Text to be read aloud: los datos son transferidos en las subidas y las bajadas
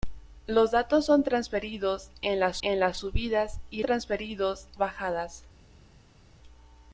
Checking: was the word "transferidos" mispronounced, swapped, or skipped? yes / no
no